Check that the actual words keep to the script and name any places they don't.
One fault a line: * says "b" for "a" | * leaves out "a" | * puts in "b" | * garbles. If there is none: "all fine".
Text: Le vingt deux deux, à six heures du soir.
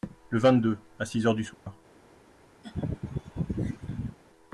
* leaves out "deux"